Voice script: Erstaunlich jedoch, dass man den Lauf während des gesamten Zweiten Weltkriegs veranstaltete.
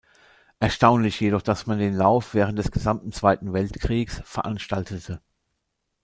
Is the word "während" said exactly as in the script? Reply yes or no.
yes